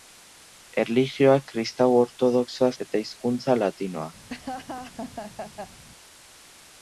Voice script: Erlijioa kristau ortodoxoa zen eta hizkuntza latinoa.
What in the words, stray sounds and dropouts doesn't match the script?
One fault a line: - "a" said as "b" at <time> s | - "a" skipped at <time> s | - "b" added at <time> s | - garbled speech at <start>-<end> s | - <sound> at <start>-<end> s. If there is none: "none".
- "zen" skipped at 2.7 s
- laugh at 4.3-5.8 s